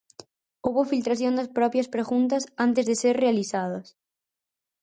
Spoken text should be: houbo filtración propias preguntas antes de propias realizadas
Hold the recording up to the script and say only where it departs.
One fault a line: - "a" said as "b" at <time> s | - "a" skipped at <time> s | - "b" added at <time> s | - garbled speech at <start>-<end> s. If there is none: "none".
- "das" added at 1.4 s
- "propias" said as "ser" at 3.0 s